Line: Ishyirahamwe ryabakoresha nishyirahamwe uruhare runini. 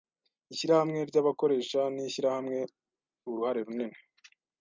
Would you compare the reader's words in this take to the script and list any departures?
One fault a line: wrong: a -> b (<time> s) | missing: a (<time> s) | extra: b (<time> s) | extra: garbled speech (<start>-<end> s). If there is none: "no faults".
no faults